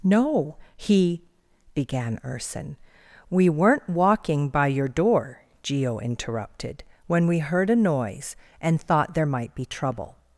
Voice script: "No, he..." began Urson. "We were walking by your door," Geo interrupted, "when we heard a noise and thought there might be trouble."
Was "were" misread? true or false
true